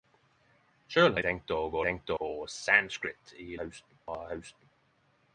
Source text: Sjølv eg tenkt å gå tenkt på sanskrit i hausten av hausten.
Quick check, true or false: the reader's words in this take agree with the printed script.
true